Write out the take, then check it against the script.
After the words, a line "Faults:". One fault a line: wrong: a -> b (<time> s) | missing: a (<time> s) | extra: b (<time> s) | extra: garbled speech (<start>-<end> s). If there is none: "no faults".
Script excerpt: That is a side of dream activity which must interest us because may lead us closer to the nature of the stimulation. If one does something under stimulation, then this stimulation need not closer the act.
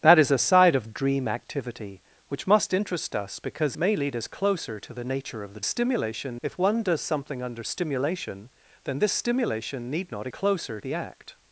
That is a side of dream activity which must interest us because may lead us closer to the nature of the stimulation. If one does something under stimulation, then this stimulation need not closer the act.
Faults:
no faults